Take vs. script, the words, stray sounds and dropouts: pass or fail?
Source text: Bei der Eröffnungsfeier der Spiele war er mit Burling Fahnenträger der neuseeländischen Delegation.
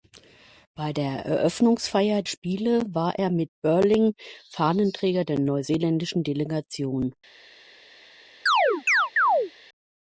fail